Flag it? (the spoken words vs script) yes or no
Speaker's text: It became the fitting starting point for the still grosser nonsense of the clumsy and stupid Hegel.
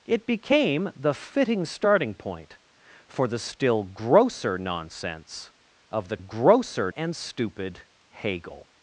yes